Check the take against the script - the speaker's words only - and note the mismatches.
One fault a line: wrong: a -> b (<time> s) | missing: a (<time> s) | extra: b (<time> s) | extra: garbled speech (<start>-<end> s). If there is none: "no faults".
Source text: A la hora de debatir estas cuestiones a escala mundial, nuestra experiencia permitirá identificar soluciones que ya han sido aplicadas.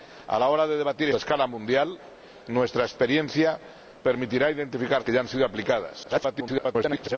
missing: estas cuestiones (1.1 s)
missing: soluciones (5.0 s)
extra: garbled speech (6.0-7.2 s)